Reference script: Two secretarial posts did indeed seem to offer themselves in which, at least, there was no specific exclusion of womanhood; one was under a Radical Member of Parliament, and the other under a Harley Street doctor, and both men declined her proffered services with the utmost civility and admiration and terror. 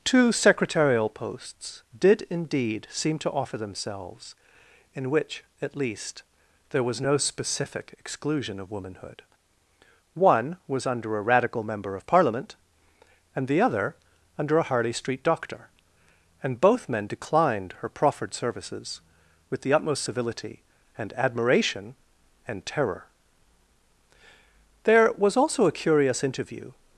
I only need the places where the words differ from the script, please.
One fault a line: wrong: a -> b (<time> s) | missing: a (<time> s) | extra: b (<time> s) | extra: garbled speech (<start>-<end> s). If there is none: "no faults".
extra: There was also a curious interview (24.8 s)